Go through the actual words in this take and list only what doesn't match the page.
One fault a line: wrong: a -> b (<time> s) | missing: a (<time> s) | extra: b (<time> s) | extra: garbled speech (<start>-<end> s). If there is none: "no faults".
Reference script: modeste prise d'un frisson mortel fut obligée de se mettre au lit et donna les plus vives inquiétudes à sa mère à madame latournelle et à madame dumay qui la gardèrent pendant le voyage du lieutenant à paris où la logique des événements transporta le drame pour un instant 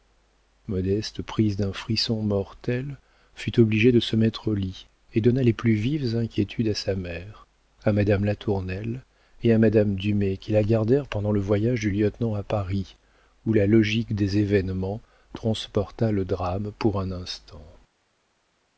no faults